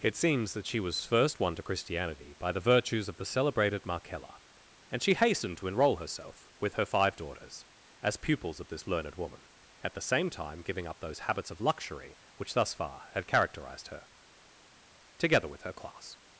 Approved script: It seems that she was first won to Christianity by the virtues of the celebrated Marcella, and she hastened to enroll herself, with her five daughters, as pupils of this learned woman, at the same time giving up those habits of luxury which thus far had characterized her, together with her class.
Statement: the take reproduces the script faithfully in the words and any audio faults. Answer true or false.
true